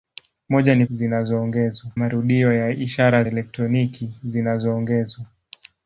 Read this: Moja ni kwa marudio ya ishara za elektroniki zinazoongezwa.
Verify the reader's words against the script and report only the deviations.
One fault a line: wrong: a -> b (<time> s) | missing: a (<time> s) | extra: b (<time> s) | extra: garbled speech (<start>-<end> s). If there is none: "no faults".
wrong: kwa -> zinazoongezwa (0.9 s)
missing: za (3.2 s)